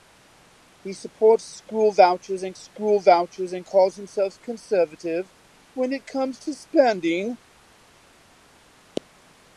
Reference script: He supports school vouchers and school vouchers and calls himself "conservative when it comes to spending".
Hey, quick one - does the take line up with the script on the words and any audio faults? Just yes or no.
yes